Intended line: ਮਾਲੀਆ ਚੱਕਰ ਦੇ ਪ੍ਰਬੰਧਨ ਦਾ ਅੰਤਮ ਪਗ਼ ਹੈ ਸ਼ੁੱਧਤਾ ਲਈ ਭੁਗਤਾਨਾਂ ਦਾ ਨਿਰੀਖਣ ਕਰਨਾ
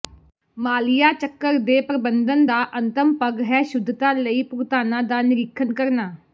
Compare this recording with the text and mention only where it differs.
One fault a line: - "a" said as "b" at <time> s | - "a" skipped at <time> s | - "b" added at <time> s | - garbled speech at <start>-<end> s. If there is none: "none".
none